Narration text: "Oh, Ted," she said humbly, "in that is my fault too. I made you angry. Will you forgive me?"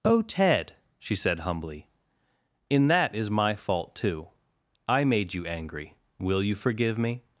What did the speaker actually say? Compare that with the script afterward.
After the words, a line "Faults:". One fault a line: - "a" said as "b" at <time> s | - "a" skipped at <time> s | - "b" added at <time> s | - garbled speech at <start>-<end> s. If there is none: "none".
"Oh, Ted," she said humbly, "in that is my fault too. I made you angry. Will you forgive me?"
Faults:
none